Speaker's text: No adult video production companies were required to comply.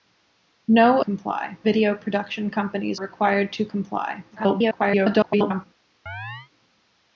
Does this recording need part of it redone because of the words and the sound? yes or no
yes